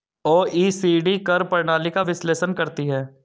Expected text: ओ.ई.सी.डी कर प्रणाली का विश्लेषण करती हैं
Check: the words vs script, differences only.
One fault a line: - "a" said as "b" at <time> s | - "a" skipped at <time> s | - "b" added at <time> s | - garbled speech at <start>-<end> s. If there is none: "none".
none